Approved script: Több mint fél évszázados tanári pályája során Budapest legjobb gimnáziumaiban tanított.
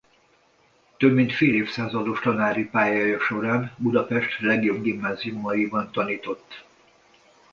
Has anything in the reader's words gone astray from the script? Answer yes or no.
no